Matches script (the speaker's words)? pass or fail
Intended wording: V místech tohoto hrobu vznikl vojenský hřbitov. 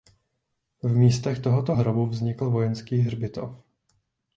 pass